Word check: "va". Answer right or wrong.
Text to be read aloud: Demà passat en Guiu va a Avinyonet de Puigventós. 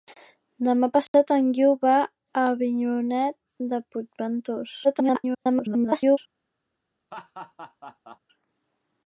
right